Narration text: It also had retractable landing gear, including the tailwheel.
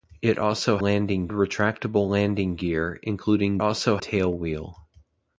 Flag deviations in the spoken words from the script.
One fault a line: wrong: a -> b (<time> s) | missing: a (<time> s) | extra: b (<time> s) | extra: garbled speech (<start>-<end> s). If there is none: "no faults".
wrong: had -> landing (0.8 s)
wrong: the -> also (3.6 s)